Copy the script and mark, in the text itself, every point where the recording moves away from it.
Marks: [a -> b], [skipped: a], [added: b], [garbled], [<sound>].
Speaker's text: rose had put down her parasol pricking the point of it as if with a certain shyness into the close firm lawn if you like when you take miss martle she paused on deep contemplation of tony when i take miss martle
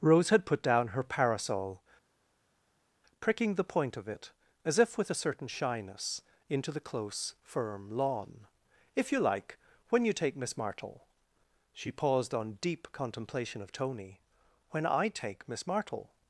rose had put down her parasol pricking the point of it as if with a certain shyness into the close firm lawn if you like when you take miss martle she paused on deep contemplation of tony when i take miss martle